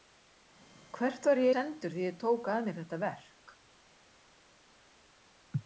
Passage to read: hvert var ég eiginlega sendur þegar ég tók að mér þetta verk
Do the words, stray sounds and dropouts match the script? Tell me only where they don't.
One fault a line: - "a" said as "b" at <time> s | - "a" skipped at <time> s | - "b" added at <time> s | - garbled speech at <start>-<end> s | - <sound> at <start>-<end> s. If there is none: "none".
- "eiginlega" skipped at 1.5 s